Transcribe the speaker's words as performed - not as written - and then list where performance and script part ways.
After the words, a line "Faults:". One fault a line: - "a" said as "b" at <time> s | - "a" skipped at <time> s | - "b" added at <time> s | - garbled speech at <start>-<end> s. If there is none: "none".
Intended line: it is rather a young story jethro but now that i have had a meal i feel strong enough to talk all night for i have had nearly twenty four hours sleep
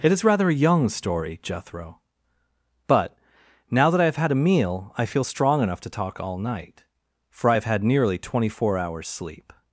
it is rather a young story jethro but now that i have had a meal i feel strong enough to talk all night for i have had nearly twenty four hours sleep
Faults:
none